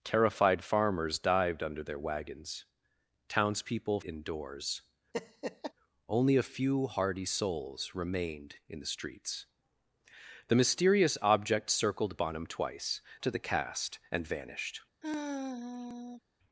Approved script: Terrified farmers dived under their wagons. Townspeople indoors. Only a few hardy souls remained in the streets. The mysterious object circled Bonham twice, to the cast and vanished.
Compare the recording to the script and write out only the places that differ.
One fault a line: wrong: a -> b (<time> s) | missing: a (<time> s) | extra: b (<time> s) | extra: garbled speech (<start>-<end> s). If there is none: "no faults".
no faults